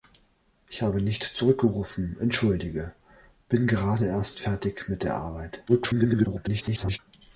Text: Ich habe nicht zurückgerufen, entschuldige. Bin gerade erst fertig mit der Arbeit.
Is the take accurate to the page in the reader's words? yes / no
no